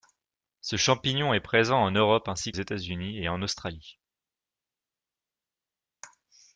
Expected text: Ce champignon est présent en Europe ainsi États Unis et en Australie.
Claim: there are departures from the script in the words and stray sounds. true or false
false